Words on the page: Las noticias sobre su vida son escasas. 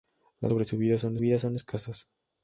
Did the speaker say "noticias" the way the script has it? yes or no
no